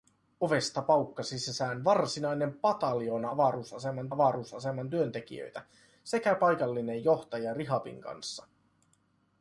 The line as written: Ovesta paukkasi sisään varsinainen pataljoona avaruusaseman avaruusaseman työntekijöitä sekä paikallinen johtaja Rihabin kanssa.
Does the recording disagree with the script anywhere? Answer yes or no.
no